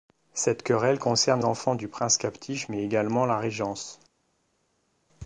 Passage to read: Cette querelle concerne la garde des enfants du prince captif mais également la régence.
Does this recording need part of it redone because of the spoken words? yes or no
yes